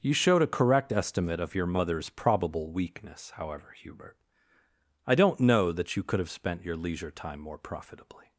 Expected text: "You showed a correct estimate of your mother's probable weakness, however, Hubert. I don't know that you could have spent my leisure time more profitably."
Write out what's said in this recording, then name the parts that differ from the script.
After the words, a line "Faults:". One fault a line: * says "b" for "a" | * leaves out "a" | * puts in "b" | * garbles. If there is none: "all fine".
"You showed a correct estimate of your mother's probable weakness, however, Hubert. I don't know that you could have spent your leisure time more profitably."
Faults:
* says "your" for "my"